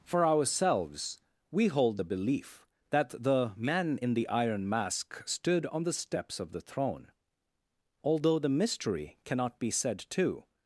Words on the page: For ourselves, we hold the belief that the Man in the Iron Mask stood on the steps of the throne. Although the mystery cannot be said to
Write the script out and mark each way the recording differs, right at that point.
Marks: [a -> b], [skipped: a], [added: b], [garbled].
For ourselves, we hold the belief that the Man in the Iron Mask stood on the steps of the throne. Although the mystery cannot be said to